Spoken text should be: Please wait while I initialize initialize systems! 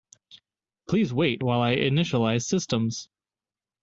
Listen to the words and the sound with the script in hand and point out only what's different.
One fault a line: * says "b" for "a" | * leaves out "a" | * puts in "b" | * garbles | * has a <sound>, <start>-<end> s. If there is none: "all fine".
* leaves out "initialize"